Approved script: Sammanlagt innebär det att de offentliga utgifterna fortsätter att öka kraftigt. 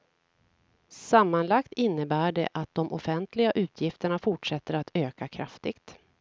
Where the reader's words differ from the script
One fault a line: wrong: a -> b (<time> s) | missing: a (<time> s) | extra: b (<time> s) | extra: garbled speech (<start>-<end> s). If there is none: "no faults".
no faults